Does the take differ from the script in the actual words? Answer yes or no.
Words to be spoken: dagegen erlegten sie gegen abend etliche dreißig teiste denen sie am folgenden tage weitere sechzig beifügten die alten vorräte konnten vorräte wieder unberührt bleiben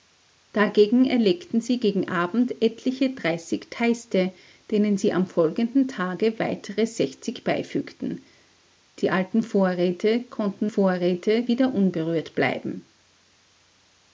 no